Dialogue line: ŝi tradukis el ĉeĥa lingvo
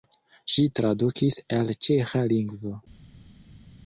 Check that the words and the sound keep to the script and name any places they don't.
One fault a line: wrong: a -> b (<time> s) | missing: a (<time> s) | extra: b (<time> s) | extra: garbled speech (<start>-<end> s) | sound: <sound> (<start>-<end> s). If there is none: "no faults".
no faults